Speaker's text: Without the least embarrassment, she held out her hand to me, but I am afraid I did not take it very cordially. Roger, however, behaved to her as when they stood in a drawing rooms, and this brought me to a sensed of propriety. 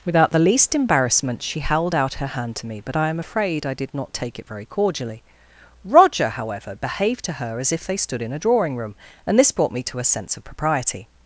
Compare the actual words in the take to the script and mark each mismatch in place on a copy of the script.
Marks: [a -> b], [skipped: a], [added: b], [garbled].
Without the least embarrassment, she held out her hand to me, but I am afraid I did not take it very cordially. Roger, however, behaved to her as [when -> if] they stood in a drawing [rooms, -> room] and this brought me to a [sensed -> sense] of propriety.